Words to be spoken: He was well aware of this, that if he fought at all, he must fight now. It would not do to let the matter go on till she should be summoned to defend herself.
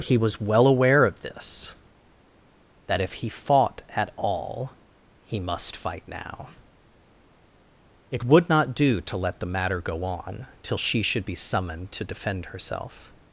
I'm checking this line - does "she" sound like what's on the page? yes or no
yes